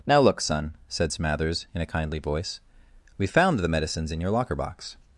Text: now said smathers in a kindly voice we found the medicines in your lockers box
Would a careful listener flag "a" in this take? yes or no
no